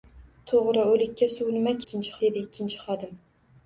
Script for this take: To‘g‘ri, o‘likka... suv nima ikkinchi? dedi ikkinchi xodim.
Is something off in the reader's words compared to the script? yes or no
no